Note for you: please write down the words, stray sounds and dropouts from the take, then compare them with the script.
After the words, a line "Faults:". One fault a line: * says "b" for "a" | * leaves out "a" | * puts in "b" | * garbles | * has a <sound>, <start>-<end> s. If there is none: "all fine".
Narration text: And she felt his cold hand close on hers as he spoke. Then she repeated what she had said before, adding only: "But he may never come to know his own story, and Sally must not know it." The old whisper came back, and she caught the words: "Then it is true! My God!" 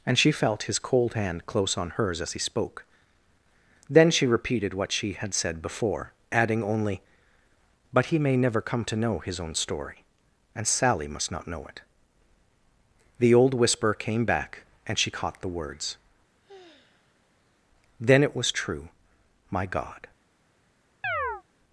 And she felt his cold hand close on hers as he spoke. Then she repeated what she had said before, adding only: "But he may never come to know his own story, and Sally must not know it." The old whisper came back, and she caught the words: "Then it was true! My God!"
Faults:
* has a sigh, 16.4-17.6 s
* says "was" for "is"
* has a chirp, 21.0-21.4 s